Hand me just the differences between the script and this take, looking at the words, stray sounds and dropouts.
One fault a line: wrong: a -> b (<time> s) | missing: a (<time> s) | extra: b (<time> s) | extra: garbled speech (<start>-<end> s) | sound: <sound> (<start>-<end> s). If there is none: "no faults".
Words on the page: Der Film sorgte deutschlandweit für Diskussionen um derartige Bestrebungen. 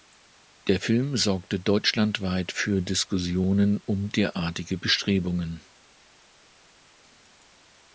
no faults